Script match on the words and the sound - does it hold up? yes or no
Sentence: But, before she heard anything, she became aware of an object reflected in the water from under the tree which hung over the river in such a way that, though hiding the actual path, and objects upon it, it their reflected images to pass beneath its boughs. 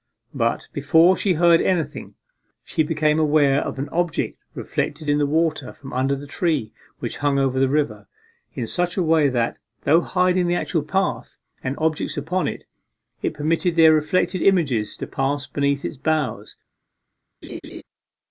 no